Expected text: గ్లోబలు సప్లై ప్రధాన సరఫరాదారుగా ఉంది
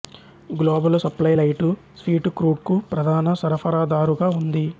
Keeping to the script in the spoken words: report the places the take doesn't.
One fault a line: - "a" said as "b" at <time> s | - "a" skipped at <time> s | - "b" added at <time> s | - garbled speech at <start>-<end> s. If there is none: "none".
- "లైటు స్వీటు క్రూడ్కు" added at 1.3 s